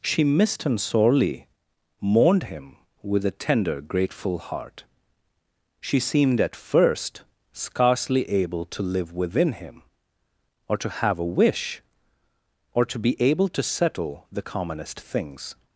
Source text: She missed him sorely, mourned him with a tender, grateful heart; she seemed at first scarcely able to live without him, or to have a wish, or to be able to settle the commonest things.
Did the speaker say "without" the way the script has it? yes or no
no